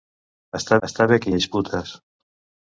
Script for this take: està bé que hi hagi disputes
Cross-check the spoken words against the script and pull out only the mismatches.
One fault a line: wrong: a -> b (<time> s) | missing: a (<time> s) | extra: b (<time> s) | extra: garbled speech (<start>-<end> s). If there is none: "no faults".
extra: està (0.9 s)
missing: hagi (1.4 s)